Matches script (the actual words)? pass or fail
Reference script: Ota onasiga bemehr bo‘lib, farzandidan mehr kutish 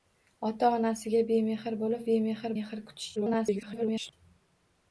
fail